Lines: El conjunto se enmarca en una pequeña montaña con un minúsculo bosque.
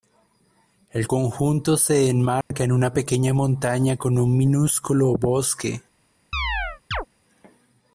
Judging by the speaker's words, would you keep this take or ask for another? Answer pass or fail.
pass